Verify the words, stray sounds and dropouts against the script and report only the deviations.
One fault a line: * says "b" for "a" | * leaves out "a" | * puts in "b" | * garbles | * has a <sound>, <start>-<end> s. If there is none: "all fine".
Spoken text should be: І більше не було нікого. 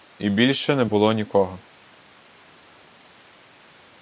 all fine